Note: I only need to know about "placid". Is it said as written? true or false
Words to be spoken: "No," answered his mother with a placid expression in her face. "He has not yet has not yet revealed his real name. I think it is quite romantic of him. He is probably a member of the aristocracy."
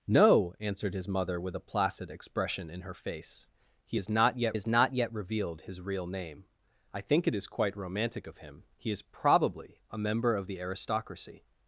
true